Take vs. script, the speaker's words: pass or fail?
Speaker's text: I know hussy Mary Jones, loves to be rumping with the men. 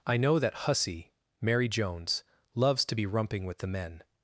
fail